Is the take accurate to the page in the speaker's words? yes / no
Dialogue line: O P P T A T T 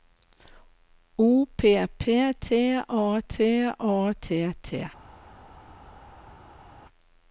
no